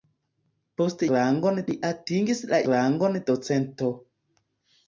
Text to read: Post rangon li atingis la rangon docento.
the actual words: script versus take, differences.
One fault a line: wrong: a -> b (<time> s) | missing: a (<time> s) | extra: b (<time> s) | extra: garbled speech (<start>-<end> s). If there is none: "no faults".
no faults